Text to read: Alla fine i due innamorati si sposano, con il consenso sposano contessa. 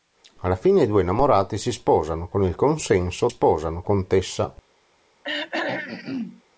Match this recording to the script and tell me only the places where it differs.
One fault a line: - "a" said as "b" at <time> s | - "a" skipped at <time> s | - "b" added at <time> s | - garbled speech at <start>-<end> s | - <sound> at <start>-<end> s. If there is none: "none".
- throat clearing at 5.2-6.4 s